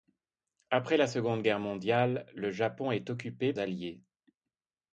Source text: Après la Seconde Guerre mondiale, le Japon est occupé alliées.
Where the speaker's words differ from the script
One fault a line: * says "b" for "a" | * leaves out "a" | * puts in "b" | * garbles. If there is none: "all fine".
all fine